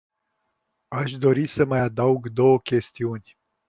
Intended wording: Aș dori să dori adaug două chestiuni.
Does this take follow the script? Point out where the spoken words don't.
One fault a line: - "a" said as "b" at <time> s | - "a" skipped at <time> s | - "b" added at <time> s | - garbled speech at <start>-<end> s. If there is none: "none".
- "dori" said as "mai" at 1.6 s